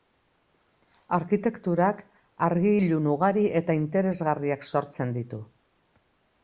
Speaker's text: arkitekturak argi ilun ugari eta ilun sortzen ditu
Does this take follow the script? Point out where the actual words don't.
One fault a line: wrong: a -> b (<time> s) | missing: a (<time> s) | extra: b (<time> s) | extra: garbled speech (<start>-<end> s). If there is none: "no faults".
wrong: ilun -> interesgarriak (3.8 s)